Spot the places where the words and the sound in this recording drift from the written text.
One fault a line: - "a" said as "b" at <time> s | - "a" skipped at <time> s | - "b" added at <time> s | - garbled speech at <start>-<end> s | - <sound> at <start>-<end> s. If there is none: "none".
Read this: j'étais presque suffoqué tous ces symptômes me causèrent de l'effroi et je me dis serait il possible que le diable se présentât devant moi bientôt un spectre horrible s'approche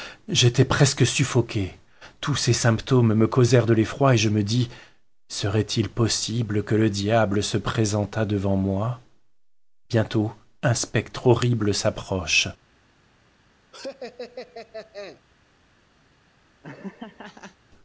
- laugh at 13.7-15.2 s
- laugh at 16.6-17.6 s